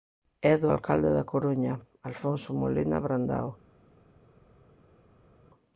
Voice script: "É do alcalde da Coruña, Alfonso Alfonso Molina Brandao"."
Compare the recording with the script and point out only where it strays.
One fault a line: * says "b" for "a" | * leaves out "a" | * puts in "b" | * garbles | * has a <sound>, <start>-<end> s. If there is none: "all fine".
* leaves out "Alfonso"